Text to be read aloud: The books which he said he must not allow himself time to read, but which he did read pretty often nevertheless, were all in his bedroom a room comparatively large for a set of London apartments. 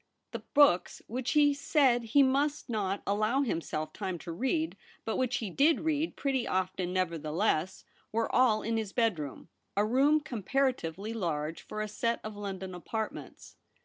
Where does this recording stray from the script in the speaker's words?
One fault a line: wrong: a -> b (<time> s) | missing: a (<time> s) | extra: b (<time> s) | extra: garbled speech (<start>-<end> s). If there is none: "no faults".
no faults